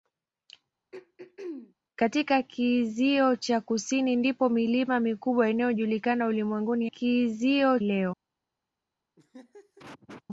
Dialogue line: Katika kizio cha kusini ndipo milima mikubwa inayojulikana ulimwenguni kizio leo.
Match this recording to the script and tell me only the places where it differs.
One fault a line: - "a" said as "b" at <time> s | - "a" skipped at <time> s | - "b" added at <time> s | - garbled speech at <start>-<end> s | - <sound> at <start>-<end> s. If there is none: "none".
- throat clearing at 0.9-1.7 s
- laugh at 9.2-10.2 s